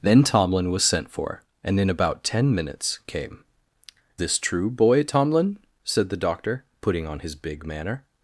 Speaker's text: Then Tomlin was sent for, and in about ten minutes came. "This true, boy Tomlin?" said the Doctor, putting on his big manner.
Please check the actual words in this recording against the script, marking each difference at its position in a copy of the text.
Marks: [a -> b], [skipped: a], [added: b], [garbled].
Then Tomlin was sent for, and in about ten minutes came. "This true, boy Tomlin?" said the Doctor, putting on his big manner.